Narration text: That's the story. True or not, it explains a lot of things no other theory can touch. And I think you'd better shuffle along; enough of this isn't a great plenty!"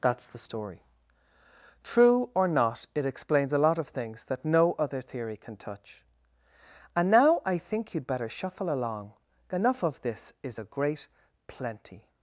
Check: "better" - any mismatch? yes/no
no